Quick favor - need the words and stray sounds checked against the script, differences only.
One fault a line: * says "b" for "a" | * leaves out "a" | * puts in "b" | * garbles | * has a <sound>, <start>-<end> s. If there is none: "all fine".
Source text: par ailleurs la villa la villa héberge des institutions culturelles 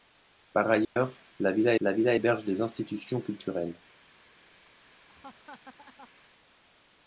* has a dropout, 0.8-1.0 s
* has a laugh, 5.1-6.1 s